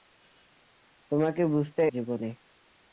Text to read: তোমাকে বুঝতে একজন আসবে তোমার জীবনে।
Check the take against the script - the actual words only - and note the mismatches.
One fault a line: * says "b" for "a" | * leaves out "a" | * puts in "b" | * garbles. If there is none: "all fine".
* leaves out "একজন আসবে তোমার"